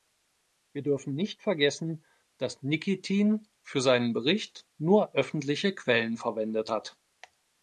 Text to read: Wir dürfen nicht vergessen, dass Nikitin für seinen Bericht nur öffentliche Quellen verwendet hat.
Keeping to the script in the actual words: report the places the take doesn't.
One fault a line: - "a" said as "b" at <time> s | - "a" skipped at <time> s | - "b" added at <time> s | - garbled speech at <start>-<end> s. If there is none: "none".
none